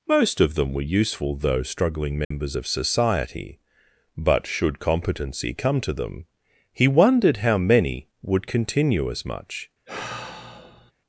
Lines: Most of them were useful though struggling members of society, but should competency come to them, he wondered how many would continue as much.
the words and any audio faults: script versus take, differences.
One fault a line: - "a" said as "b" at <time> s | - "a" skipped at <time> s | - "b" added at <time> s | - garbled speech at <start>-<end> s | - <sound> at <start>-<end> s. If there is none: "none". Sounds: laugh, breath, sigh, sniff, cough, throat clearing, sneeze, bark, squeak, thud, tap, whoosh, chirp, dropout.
- dropout at 2.2-2.3 s
- sigh at 9.9-10.9 s